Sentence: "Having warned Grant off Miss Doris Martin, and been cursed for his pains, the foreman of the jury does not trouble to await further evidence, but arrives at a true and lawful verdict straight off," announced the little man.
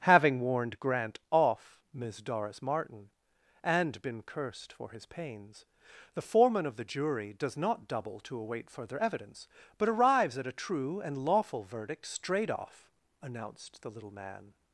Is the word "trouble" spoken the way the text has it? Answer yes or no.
no